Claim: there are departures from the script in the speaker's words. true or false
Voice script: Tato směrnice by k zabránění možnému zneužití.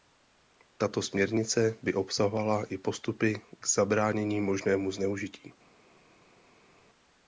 true